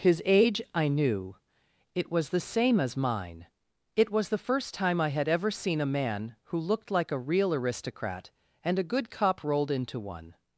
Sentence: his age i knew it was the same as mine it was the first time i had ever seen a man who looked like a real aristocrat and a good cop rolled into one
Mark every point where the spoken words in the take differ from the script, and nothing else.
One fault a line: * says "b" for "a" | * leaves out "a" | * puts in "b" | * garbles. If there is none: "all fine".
all fine